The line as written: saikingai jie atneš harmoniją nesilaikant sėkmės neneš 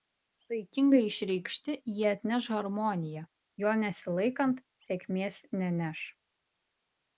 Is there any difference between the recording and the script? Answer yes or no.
yes